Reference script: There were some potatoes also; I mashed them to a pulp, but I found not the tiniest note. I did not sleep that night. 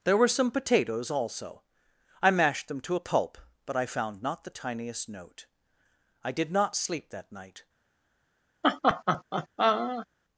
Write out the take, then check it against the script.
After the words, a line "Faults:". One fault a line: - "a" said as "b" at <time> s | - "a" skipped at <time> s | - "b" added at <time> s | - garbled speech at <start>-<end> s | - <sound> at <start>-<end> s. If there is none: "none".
There were some potatoes also; I mashed them to a pulp, but I found not the tiniest note. I did not sleep that night.
Faults:
- laugh at 8.6-10.1 s